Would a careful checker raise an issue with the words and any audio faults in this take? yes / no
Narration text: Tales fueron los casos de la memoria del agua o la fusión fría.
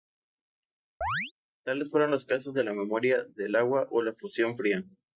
yes